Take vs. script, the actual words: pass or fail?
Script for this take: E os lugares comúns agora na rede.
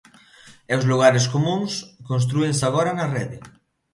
fail